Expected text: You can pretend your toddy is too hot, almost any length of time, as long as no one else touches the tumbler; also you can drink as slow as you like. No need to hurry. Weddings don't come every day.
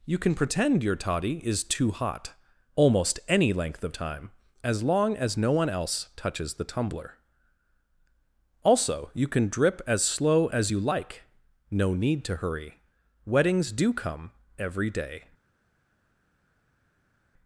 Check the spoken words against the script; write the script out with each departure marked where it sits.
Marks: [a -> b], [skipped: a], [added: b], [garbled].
You can pretend your toddy is too hot, almost any length of time, as long as no one else touches the tumbler; also you can [drink -> drip] as slow as you like. No need to hurry. Weddings [don't -> do] come every day.